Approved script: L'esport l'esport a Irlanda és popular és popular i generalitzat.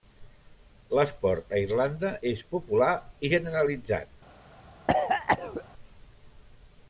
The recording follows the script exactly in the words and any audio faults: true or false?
false